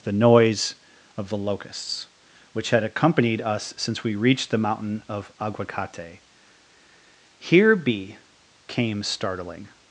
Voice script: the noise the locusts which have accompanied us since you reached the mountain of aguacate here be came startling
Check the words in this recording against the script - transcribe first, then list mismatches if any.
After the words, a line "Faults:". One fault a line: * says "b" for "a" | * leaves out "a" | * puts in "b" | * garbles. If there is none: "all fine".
the noise of the locusts which had accompanied us since we reached the mountain of aguacate here be came startling
Faults:
* puts in "of"
* says "had" for "have"
* says "we" for "you"